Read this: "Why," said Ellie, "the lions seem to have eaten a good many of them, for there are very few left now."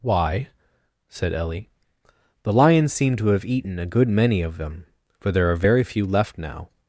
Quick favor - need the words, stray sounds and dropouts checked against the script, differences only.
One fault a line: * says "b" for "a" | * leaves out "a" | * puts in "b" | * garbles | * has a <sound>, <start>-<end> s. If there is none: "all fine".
all fine